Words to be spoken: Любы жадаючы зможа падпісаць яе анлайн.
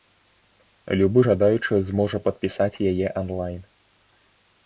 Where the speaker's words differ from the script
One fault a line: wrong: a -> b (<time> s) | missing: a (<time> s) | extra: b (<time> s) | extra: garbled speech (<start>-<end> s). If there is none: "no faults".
no faults